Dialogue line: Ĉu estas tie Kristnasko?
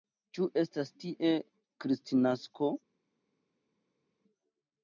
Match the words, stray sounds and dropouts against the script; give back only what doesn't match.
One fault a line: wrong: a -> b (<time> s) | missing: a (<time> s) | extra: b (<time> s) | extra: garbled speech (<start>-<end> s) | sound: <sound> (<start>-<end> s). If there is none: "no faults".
no faults